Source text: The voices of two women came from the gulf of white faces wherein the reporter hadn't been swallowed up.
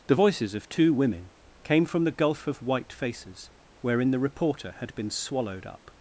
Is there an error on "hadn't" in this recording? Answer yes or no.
yes